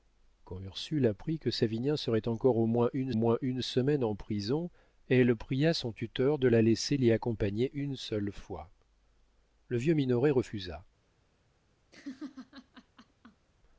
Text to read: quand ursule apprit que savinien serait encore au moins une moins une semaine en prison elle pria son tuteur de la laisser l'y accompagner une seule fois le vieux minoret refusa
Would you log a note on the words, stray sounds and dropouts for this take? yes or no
yes